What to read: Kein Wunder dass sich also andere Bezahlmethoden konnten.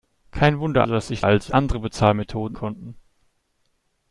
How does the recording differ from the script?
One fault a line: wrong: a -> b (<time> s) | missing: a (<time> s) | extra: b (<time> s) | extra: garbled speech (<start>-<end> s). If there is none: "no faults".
no faults